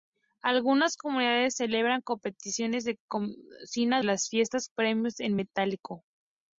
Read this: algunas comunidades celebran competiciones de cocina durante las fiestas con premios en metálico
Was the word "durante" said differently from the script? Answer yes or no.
yes